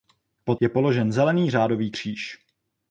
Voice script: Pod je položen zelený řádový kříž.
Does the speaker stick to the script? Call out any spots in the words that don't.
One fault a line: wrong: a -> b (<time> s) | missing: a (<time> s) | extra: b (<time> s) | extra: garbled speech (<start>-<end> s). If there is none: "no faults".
no faults